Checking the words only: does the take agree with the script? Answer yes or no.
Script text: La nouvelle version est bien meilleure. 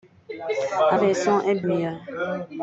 no